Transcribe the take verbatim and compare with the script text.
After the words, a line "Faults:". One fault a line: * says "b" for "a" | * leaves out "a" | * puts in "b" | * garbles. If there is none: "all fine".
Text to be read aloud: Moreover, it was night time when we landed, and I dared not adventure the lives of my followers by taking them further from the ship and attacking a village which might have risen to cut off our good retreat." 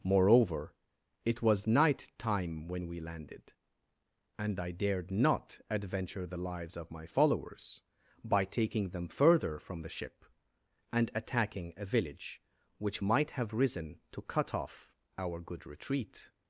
Moreover, it was night time when we landed, and I dared not adventure the lives of my followers by taking them further from the ship and attacking a village which might have risen to cut off our good retreat."
Faults:
all fine